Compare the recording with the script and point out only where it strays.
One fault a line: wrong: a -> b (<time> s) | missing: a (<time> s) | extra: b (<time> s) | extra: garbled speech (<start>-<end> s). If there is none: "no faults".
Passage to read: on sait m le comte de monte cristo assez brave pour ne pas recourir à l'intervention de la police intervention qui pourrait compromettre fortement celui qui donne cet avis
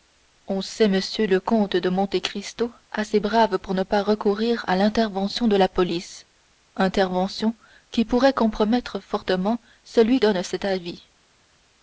missing: qui (10.2 s)